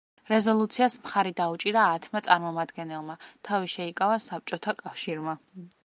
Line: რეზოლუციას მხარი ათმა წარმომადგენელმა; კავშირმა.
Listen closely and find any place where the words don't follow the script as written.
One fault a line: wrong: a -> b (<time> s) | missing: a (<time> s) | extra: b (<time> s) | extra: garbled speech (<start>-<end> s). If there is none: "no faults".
extra: დაუჭირა (1.4 s)
extra: თავი შეიკავა საბჭოთა (3.5 s)